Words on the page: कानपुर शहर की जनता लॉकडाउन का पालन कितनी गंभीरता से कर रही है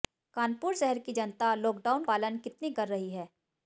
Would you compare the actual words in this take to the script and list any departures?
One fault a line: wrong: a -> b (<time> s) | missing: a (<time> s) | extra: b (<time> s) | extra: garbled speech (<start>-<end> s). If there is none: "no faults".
missing: का (2.0 s)
missing: गंभीरता से (2.7 s)